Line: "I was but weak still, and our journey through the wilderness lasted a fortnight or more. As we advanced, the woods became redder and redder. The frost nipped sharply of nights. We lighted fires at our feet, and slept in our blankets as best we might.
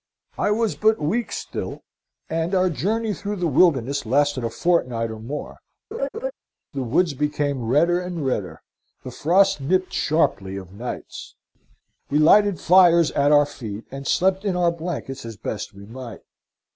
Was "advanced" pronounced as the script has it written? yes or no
no